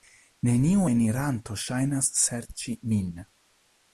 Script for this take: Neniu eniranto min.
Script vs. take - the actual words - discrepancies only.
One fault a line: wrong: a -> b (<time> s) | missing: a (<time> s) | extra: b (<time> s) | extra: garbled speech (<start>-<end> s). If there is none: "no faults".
extra: ŝajnas serĉi (1.6 s)